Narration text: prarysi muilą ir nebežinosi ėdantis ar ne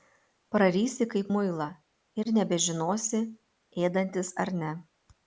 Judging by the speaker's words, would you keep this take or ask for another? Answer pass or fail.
fail